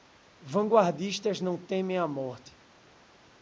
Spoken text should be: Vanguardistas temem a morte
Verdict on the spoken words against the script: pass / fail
fail